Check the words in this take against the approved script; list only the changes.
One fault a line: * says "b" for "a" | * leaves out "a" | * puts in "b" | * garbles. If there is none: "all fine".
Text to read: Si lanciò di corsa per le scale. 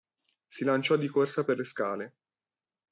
all fine